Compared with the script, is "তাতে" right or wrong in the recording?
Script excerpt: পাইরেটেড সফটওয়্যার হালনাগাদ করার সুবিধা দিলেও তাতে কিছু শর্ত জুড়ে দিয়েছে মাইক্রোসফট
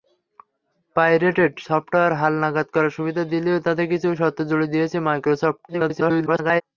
right